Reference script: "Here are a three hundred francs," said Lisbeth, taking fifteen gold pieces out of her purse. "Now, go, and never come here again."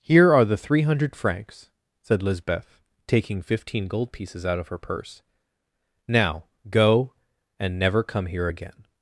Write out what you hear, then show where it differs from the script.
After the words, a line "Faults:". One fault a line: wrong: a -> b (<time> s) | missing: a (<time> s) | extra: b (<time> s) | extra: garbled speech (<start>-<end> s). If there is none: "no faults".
"Here are the three hundred francs," said Lisbeth, taking fifteen gold pieces out of her purse. "Now, go, and never come here again."
Faults:
wrong: a -> the (0.5 s)